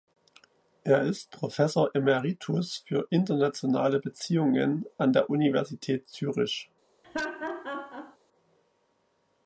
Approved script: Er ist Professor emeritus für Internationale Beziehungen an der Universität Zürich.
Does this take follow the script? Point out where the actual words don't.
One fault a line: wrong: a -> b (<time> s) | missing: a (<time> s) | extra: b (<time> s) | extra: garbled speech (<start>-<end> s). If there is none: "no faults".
no faults